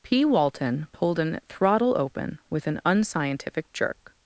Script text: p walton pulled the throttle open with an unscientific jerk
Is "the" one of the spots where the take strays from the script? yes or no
yes